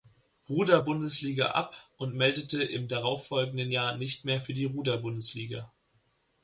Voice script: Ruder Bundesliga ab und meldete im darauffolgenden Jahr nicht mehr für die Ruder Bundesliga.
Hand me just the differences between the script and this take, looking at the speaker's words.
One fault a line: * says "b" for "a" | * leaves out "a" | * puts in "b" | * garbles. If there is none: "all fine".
all fine